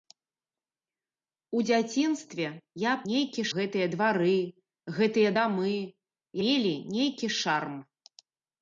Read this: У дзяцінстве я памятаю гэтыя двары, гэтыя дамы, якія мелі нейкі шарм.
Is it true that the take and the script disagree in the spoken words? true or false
true